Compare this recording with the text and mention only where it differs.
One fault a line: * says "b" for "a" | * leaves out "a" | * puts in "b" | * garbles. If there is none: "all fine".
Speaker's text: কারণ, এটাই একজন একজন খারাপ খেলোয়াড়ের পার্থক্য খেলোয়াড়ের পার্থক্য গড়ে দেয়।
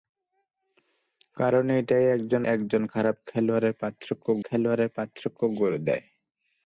all fine